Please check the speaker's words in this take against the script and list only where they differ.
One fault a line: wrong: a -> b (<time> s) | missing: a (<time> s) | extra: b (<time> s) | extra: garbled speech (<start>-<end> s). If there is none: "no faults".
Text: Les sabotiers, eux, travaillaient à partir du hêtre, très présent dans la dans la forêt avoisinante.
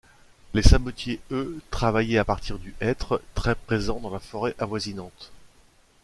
missing: dans la (4.2 s)